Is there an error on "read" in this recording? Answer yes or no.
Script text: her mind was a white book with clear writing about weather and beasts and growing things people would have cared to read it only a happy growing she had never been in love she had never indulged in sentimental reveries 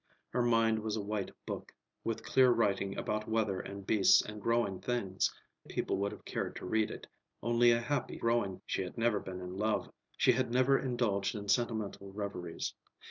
no